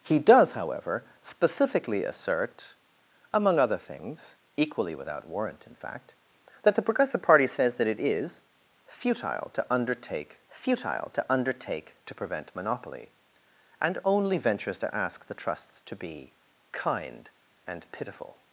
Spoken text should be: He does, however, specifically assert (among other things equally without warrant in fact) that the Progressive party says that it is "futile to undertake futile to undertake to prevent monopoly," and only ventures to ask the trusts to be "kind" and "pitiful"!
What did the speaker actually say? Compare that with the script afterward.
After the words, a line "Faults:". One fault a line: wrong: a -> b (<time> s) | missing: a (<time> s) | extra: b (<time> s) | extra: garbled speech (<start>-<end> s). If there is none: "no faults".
He does, however, specifically assert (among other things equally without warrant in fact) that the Progressive party says that it is "futile to undertake futile to undertake to prevent monopoly," and only ventures to ask the trusts to be "kind" and "pitiful"!
Faults:
no faults